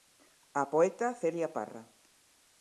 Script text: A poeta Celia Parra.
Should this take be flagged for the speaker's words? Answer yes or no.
no